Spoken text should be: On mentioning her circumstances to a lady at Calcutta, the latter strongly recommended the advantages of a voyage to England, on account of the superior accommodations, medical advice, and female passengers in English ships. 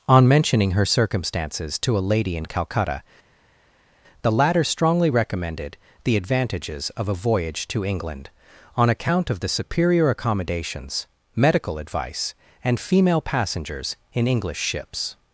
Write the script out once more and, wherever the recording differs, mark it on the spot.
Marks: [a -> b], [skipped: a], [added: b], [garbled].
On mentioning her circumstances to a lady [at -> in] Calcutta, the latter strongly recommended the advantages of a voyage to England, on account of the superior accommodations, medical advice, and female passengers in English ships.